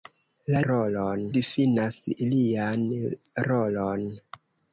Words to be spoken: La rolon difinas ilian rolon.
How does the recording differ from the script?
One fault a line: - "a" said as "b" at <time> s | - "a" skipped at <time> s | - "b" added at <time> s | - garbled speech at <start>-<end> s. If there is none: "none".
none